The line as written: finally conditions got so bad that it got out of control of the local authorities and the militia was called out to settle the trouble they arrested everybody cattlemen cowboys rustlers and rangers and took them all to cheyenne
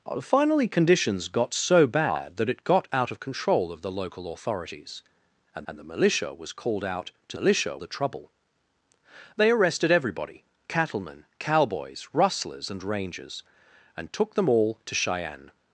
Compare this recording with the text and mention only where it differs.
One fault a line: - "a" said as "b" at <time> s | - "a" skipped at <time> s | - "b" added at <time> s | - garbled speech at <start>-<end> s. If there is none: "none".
- "and" added at 5.7 s
- "settle" said as "militia" at 7.4 s